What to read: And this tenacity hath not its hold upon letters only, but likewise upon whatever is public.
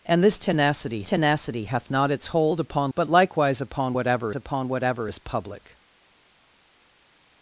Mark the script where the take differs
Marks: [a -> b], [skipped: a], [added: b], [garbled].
And this tenacity [added: tenacity] hath not its hold upon [letters only, but likewise -> but likewise upon whatever] upon whatever is public.